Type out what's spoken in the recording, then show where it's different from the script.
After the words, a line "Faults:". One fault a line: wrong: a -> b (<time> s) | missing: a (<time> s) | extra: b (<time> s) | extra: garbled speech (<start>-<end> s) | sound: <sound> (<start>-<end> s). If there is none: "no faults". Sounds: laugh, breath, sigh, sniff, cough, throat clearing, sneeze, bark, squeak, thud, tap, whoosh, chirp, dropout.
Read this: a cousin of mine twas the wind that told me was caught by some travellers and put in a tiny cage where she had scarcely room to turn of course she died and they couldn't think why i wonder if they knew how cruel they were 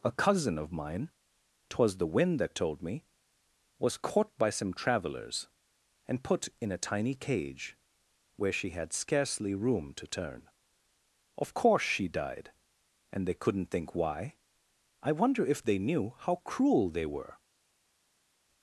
a cousin of mine twas the wind that told me was caught by some travellers and put in a tiny cage where she had scarcely room to turn of course she died and they couldn't think why i wonder if they knew how cruel they were
Faults:
no faults